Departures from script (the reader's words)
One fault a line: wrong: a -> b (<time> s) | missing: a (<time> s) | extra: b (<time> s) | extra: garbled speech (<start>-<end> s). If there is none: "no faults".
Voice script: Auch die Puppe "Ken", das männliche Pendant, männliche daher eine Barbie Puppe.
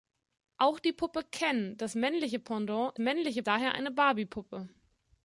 no faults